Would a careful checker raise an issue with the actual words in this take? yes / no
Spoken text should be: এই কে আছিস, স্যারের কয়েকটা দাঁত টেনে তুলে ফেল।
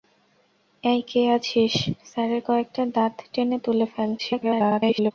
yes